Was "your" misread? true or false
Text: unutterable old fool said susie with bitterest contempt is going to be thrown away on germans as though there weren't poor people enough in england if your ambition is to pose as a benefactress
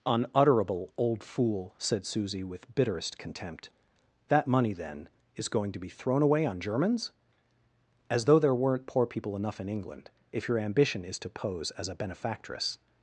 false